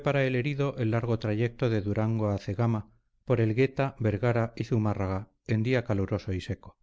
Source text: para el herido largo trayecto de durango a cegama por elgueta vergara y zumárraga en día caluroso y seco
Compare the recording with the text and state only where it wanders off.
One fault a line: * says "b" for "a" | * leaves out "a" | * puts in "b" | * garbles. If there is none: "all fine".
* puts in "el"